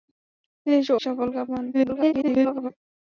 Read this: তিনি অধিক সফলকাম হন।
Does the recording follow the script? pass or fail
fail